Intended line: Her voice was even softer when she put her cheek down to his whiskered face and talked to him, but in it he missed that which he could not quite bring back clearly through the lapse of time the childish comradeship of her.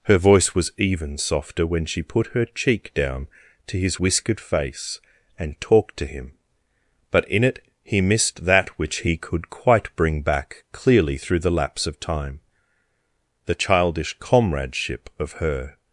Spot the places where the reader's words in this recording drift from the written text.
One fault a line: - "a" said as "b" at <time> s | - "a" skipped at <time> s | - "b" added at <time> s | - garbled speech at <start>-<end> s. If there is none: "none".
- "not" skipped at 9.5 s